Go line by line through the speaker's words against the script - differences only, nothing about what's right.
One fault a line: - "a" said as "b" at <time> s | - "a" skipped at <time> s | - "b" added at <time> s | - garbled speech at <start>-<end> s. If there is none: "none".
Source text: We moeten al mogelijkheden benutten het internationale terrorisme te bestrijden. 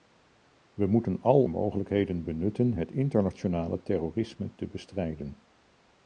none